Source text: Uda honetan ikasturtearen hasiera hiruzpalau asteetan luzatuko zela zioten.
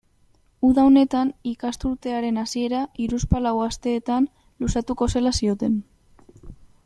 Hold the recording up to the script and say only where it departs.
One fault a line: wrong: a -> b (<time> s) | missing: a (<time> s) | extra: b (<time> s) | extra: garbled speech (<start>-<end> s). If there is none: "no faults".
no faults